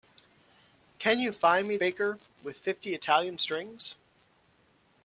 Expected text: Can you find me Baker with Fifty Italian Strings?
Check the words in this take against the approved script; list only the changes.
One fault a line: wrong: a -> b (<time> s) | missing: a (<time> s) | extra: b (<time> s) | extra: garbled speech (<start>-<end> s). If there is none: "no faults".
no faults